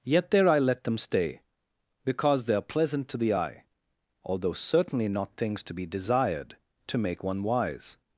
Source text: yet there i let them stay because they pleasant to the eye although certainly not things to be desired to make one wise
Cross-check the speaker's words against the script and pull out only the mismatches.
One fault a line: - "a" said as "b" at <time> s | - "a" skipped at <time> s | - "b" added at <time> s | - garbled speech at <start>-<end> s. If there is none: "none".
- "are" added at 2.5 s